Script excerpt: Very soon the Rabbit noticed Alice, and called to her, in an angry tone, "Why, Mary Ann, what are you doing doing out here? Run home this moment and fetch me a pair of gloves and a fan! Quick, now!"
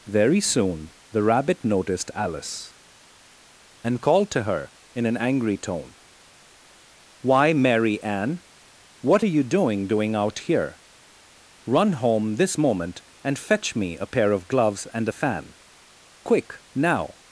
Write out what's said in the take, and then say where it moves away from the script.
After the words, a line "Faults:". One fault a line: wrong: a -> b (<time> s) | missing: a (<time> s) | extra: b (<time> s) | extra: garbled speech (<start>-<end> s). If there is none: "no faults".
Very soon the Rabbit noticed Alice, and called to her, in an angry tone, "Why, Mary Ann, what are you doing doing out here? Run home this moment and fetch me a pair of gloves and a fan! Quick, now!"
Faults:
no faults